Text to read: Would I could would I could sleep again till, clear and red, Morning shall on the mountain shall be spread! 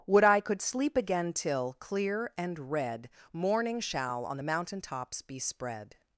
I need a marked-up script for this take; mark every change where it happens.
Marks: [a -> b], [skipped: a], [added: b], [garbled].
Would I could [skipped: would I could] sleep again till, clear and red, Morning shall on the mountain [shall -> tops] be spread!